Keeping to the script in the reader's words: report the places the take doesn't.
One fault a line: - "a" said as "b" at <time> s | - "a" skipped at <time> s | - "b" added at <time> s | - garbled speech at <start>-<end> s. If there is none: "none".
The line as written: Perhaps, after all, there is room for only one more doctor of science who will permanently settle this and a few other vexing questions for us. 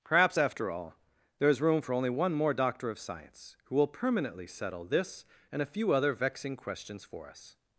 none